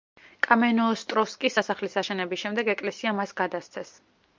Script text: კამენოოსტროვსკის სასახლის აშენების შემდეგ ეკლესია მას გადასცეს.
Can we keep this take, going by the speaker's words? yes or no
yes